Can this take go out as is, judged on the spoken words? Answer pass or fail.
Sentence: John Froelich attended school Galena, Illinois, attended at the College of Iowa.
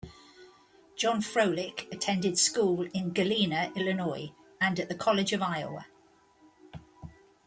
fail